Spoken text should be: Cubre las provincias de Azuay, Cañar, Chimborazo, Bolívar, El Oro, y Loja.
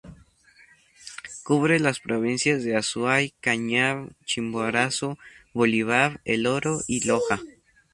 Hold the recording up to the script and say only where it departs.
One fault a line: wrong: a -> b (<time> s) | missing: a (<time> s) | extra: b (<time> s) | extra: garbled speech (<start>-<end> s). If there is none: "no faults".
no faults